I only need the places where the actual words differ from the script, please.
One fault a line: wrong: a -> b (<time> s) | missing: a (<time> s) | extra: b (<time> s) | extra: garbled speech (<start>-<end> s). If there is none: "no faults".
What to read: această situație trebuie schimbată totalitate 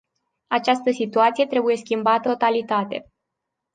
no faults